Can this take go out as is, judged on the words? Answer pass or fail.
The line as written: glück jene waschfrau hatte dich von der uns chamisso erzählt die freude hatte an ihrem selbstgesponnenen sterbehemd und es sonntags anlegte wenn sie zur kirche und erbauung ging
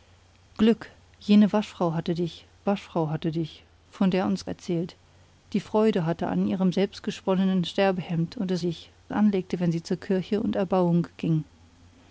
fail